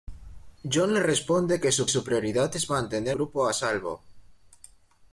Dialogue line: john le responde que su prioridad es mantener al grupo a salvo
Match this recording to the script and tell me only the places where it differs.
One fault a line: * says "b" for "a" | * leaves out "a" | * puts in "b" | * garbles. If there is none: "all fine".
* puts in "su"
* leaves out "al"